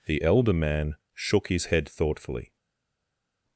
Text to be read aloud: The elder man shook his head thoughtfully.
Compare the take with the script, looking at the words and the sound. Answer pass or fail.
pass